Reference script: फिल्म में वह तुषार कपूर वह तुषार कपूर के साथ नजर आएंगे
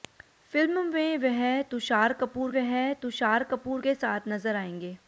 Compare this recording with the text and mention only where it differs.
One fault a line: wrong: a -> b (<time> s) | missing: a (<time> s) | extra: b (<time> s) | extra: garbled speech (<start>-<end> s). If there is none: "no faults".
no faults